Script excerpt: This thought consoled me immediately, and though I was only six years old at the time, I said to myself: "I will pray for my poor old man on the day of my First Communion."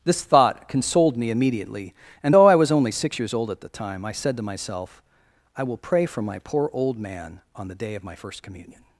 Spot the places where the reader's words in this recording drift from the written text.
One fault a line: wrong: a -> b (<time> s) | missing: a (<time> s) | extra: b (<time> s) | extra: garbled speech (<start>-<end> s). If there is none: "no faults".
no faults